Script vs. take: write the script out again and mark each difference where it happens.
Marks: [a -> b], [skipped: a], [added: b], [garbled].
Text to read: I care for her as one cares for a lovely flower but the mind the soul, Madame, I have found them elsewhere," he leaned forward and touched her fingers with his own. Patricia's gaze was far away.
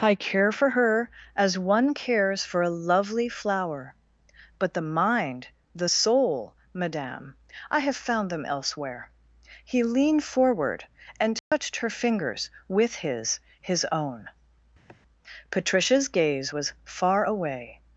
I care for her as one cares for a lovely flower but the mind the soul, Madame, I have found them elsewhere," he leaned forward and touched her fingers with his [added: his] own. Patricia's gaze was far away.